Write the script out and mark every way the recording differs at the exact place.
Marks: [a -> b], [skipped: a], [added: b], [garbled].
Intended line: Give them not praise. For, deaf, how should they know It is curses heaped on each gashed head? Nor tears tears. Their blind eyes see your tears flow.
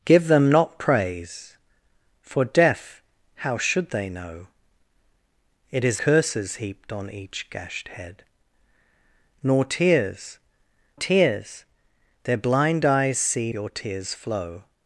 Give them not praise. For, deaf, how should they know It is curses heaped on each gashed head? Nor tears tears. Their blind eyes see your tears flow.